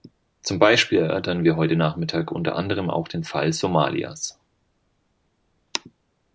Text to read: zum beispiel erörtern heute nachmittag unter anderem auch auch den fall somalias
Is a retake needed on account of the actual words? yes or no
yes